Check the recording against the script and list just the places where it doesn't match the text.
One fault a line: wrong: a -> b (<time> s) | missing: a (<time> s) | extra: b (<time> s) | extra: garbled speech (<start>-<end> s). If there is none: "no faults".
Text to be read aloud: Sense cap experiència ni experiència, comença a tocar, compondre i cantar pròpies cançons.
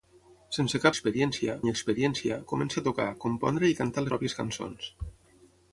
no faults